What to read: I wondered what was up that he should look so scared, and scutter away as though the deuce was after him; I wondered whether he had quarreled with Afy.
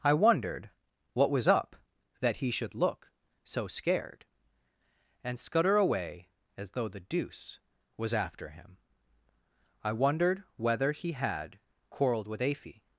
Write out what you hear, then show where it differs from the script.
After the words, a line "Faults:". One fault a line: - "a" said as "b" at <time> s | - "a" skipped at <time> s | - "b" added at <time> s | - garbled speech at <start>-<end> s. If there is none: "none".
I wondered what was up that he should look so scared, and scutter away as though the deuce was after him; I wondered whether he had quarreled with Afy.
Faults:
none